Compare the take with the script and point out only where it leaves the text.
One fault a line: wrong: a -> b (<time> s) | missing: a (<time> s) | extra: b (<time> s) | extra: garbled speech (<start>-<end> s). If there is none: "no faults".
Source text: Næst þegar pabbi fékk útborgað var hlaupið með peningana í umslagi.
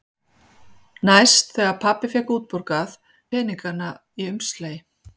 missing: var hlaupið með (3.0 s)